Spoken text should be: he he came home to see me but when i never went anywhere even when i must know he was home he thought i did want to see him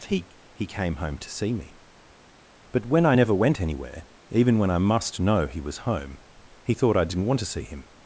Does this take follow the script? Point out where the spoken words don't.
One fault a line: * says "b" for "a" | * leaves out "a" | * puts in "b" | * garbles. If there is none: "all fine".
* says "didn't" for "did"